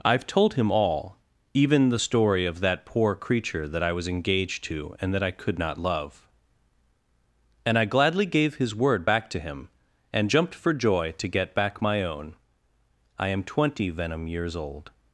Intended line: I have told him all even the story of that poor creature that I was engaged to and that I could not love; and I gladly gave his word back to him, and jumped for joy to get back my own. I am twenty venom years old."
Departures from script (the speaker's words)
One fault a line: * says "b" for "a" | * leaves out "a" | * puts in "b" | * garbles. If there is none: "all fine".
all fine